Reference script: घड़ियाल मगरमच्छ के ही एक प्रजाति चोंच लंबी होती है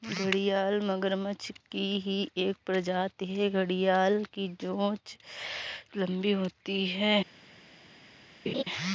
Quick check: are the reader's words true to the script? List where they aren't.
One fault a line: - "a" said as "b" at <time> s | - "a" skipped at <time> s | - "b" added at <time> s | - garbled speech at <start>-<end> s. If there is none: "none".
- "के" said as "की" at 1.7 s
- "है घड़ियाल की" added at 3.2 s